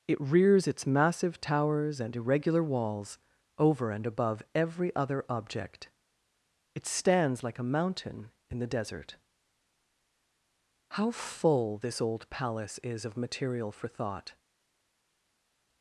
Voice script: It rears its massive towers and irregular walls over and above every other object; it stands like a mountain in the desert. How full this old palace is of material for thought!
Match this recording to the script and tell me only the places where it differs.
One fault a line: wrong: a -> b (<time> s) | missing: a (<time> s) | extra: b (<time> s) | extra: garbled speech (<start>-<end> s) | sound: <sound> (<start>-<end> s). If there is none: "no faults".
no faults